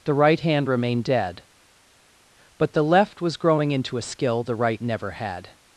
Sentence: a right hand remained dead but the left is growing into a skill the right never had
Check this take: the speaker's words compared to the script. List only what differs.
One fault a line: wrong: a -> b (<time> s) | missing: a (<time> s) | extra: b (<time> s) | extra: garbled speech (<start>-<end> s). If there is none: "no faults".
wrong: a -> the (0.0 s)
wrong: is -> was (3.2 s)